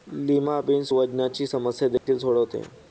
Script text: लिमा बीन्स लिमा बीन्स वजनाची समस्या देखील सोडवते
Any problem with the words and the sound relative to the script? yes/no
yes